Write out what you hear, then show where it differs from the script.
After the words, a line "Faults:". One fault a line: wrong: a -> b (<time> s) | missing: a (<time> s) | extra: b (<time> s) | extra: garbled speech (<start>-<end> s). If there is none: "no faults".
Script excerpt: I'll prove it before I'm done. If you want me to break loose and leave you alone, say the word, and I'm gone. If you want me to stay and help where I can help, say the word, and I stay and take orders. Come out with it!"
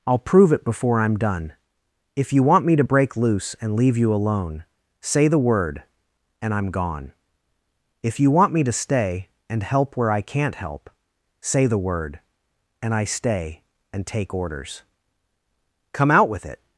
I'll prove it before I'm done. If you want me to break loose and leave you alone, say the word, and I'm gone. If you want me to stay and help where I can't help, say the word, and I stay and take orders. Come out with it!"
Faults:
wrong: can -> can't (10.2 s)